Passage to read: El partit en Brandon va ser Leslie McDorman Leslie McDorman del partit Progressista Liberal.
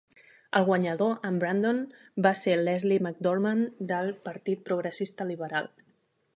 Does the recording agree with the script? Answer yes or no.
no